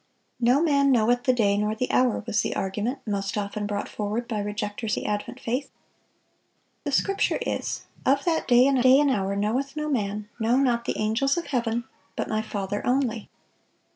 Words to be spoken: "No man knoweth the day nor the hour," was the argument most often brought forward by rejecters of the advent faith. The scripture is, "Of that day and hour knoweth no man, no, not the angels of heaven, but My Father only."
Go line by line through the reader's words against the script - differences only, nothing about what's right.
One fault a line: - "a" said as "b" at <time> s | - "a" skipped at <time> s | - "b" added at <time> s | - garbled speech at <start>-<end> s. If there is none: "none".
- "of" skipped at 5.0 s
- "day and" added at 8.8 s